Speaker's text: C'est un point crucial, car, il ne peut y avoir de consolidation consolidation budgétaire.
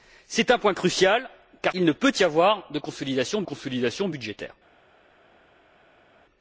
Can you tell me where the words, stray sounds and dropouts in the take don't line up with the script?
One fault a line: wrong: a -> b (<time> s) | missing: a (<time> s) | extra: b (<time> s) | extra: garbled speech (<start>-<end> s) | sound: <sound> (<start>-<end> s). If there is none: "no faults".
no faults